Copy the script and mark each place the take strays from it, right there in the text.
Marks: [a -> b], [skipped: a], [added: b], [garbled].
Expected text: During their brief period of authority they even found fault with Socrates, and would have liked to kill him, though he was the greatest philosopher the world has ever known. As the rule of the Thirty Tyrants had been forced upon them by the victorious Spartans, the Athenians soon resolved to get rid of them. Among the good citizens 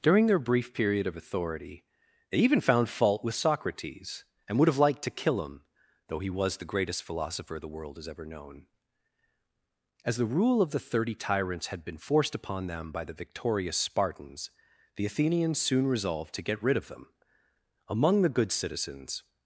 During their brief period of authority they even found fault with Socrates, and would have liked to kill him, though he was the greatest philosopher the world has ever known. As the rule of the Thirty Tyrants had been forced upon them by the victorious Spartans, the Athenians soon resolved to get rid of them. Among the good citizens